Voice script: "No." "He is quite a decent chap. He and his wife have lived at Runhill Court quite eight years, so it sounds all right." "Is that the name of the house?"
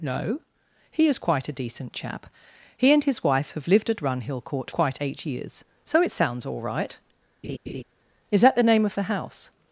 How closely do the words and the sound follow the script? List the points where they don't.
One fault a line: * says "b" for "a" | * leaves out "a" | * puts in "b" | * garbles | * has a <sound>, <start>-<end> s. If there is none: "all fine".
* has a laugh, 7.4-7.8 s